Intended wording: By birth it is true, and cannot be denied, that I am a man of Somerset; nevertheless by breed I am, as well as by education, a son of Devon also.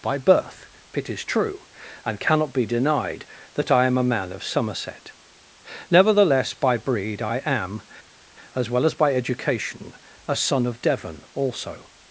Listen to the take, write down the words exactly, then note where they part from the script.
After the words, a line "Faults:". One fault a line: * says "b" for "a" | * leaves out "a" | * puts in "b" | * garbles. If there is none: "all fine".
By birth it is true, and cannot be denied, that I am a man of Somerset; nevertheless by breed I am, as well as by education, a son of Devon also.
Faults:
all fine